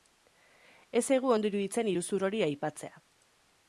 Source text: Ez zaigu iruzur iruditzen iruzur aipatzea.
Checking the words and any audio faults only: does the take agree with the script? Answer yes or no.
no